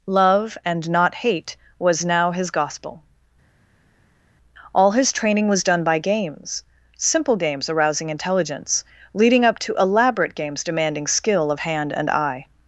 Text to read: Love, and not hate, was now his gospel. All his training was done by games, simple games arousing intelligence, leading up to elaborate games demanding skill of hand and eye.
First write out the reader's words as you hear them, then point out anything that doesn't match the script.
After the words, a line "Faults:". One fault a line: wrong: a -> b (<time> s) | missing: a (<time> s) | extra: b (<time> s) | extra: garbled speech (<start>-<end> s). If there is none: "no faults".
Love, and not hate, was now his gospel. All his training was done by games, simple games arousing intelligence, leading up to elaborate games demanding skill of hand and eye.
Faults:
no faults